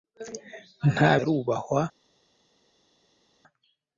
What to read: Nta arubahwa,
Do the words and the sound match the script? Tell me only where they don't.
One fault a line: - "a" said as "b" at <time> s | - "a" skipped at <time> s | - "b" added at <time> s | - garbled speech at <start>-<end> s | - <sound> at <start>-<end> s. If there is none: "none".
none